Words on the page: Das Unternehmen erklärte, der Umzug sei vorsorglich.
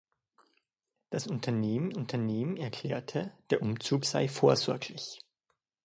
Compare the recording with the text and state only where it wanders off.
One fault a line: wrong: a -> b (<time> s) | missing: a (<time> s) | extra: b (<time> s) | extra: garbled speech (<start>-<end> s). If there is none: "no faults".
extra: Unternehmen (1.9 s)